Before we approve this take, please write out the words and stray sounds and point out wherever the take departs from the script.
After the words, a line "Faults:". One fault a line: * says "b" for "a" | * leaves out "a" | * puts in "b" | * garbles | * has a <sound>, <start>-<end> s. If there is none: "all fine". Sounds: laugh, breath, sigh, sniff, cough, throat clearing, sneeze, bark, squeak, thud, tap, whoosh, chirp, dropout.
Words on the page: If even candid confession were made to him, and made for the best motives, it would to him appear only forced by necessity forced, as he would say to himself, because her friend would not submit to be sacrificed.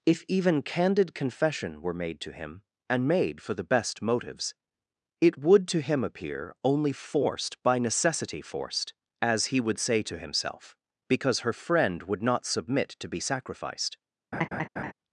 If even candid confession were made to him, and made for the best motives, it would to him appear only forced by necessity forced, as he would say to himself, because her friend would not submit to be sacrificed.
Faults:
* has a laugh, 14.3-14.9 s